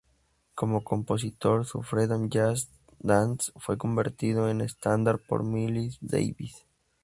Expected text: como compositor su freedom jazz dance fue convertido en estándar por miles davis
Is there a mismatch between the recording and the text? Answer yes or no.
no